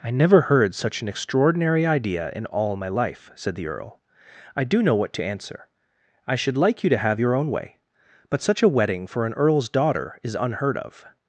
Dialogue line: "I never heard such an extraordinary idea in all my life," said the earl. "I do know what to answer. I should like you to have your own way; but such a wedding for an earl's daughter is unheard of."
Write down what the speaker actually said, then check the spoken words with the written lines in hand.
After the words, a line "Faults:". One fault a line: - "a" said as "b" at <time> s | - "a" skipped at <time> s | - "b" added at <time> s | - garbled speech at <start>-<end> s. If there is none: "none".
"I never heard such an extraordinary idea in all my life," said the earl. "I do know what to answer. I should like you to have your own way; but such a wedding for an earl's daughter is unheard of."
Faults:
none